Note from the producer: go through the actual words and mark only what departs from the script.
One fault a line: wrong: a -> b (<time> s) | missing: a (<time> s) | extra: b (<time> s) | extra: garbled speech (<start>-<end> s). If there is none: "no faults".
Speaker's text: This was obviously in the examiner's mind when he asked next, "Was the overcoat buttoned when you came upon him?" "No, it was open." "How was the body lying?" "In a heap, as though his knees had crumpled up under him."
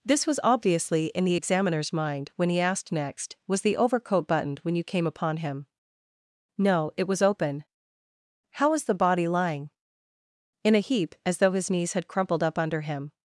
no faults